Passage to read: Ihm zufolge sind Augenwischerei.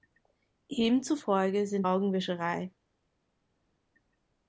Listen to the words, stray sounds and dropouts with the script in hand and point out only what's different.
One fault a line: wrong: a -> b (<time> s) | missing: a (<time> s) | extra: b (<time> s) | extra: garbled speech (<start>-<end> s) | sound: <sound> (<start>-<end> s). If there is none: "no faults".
no faults